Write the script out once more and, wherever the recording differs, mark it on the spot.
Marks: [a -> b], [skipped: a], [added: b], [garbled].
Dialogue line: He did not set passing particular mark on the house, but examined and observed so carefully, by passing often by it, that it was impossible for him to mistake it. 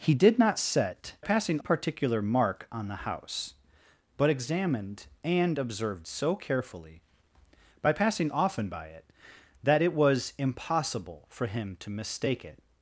He did not set passing particular mark on the house, but examined and observed so carefully, by passing often by it, that it was impossible for him to mistake it.